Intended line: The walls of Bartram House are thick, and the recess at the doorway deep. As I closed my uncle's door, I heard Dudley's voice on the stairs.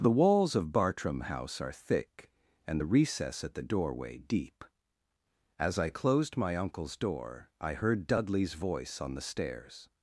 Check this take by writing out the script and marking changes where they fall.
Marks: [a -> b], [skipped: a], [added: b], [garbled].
The walls of Bartram House are thick, and the recess at the doorway deep. As I closed my uncle's door, I heard Dudley's voice on the stairs.